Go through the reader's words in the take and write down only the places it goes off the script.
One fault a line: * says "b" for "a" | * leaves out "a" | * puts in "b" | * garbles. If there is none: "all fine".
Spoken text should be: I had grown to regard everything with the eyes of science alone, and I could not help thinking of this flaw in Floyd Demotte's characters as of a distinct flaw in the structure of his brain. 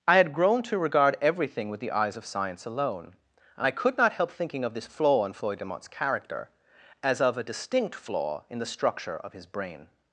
* says "character" for "characters"